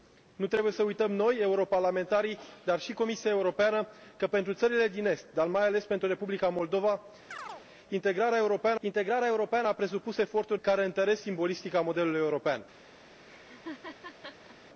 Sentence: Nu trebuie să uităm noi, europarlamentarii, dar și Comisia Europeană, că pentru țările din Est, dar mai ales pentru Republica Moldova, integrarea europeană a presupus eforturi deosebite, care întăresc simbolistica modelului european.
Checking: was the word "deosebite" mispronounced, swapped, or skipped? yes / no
yes